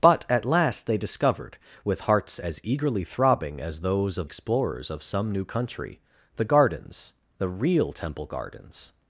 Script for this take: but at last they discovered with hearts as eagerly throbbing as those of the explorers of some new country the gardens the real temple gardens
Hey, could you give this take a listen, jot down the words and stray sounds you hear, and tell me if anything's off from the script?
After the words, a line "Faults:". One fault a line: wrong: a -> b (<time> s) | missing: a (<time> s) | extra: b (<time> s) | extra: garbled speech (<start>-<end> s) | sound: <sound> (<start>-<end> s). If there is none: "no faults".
but at last they discovered with hearts as eagerly throbbing as those of explorers of some new country the gardens the real temple gardens
Faults:
missing: the (4.3 s)